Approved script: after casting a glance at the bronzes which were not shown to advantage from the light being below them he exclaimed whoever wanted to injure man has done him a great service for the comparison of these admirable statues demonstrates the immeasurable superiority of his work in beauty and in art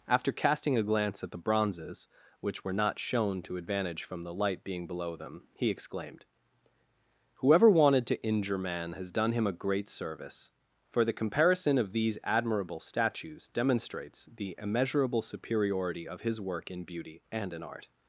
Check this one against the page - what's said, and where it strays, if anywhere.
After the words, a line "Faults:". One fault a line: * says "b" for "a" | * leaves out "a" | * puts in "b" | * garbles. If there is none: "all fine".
after casting a glance at the bronzes which were not shown to advantage from the light being below them he exclaimed whoever wanted to injure man has done him a great service for the comparison of these admirable statues demonstrates the immeasurable superiority of his work in beauty and in art
Faults:
all fine